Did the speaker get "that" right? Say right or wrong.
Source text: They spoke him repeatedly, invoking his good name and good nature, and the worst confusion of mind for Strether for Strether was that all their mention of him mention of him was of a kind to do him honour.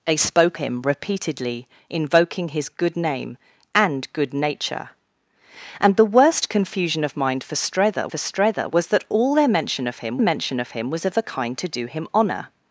right